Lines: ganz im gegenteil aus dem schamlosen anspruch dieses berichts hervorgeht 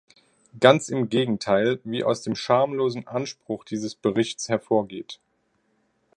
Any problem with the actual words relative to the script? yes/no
yes